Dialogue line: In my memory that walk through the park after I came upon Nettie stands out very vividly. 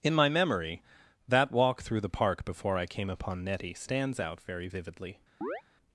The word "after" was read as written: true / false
false